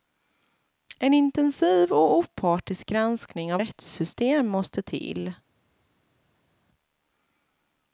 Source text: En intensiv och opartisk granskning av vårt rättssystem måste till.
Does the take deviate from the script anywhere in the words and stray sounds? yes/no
yes